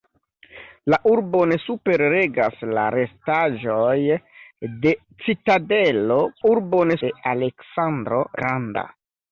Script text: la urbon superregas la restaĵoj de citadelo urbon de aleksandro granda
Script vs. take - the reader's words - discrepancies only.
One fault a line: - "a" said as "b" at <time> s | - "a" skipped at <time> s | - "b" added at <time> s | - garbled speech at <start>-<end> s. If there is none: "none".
none